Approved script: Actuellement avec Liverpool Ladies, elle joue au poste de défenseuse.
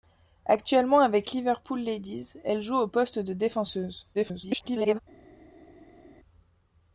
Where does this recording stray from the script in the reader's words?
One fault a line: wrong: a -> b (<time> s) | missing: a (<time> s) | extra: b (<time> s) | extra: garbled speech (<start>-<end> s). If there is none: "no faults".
extra: garbled speech (4.1-5.0 s)